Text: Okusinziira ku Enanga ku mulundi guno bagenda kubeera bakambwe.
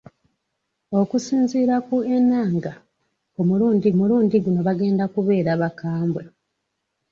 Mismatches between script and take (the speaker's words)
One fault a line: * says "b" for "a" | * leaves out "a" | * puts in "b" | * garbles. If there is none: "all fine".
* puts in "mulundi"